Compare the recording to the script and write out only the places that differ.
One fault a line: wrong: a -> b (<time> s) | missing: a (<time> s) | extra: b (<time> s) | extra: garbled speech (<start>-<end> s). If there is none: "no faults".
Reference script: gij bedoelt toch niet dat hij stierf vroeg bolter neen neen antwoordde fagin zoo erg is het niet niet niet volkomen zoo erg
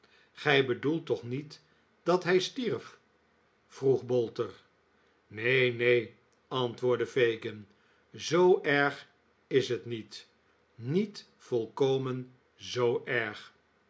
missing: niet (11.3 s)